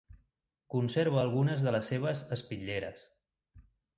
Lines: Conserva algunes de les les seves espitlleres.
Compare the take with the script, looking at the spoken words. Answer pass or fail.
fail